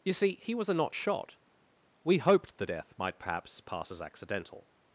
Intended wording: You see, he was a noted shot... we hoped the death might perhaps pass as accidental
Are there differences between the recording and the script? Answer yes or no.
yes